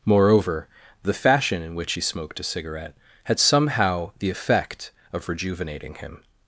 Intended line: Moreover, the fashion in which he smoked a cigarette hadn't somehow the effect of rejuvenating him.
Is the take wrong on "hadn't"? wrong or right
wrong